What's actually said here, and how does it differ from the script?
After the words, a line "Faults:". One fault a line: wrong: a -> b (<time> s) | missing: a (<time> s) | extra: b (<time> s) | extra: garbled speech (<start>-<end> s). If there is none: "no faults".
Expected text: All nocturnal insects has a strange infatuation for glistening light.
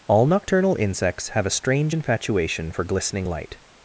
All nocturnal insects have a strange infatuation for glistening light.
Faults:
wrong: has -> have (1.3 s)